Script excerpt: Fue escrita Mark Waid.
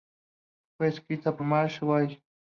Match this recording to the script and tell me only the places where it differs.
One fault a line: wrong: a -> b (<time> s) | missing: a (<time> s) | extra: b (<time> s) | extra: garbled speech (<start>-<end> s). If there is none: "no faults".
no faults